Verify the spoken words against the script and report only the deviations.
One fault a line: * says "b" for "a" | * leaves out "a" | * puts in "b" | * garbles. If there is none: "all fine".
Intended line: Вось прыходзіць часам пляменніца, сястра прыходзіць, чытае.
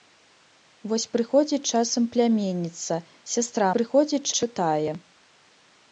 all fine